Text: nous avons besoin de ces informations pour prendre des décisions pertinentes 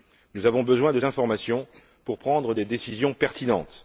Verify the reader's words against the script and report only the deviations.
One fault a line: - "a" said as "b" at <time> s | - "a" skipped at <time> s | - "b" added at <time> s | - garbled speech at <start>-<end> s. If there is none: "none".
- "ces" skipped at 1.0 s